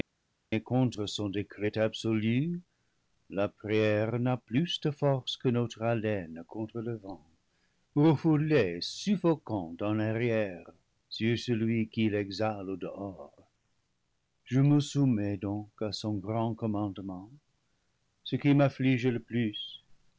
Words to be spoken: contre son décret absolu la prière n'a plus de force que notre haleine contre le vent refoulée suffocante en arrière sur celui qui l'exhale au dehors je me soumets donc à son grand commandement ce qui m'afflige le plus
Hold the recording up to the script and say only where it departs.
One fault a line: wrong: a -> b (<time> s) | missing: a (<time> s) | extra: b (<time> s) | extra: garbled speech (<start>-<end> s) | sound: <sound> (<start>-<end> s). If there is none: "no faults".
no faults